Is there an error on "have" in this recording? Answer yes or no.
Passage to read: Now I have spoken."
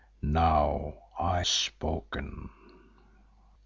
yes